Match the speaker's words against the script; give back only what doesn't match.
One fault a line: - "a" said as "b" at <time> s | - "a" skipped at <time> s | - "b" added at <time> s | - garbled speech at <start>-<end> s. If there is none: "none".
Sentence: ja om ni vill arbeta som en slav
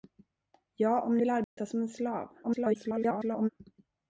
- "ni" skipped at 1.2 s
- garbled speech at 2.4-3.5 s